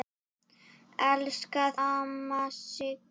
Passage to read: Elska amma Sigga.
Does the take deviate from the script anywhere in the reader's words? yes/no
no